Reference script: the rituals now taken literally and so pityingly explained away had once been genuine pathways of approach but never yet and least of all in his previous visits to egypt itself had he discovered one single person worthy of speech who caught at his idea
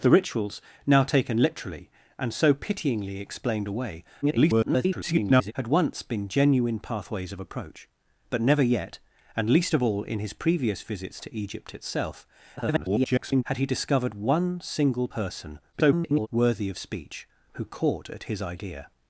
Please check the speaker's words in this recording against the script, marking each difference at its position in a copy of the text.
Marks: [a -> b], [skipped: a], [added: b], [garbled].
the rituals now taken literally and so pityingly explained away [garbled] had once been genuine pathways of approach but never yet and least of all in his previous visits to egypt itself [garbled] had he discovered one single person [garbled] worthy of speech who caught at his idea